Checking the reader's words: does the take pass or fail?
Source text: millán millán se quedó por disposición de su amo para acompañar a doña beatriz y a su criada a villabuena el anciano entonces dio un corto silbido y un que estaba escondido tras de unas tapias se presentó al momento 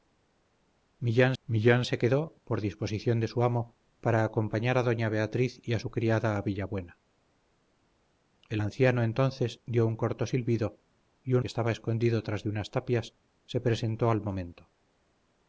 pass